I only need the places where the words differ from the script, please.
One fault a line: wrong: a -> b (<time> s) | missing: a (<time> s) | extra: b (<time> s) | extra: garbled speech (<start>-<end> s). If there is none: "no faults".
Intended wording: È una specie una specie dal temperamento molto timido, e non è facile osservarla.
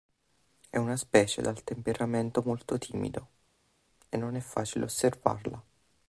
missing: una specie (1.4 s)